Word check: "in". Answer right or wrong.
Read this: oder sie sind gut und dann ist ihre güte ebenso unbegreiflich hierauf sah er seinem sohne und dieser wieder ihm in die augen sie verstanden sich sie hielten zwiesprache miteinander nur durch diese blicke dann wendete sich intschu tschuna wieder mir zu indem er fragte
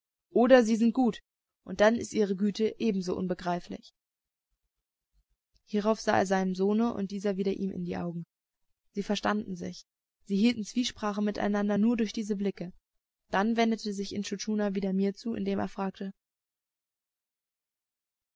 right